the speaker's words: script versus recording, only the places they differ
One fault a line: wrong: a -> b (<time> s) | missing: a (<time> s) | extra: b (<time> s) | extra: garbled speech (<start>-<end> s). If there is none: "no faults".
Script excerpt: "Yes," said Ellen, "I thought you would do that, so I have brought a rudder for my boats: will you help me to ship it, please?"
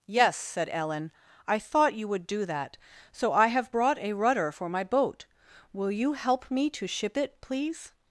wrong: boats -> boat (4.8 s)